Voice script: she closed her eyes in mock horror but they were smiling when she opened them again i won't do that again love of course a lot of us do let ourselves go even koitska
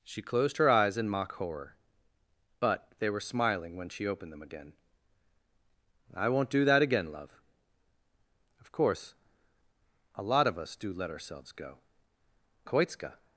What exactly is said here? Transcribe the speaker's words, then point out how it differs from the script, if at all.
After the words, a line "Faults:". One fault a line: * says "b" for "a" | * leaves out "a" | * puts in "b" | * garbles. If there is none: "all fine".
she closed her eyes in mock horror but they were smiling when she opened them again i won't do that again love of course a lot of us do let ourselves go koitska
Faults:
* leaves out "even"